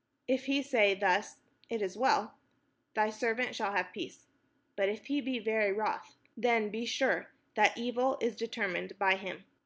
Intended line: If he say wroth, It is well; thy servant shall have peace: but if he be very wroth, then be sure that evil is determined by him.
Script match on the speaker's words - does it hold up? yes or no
no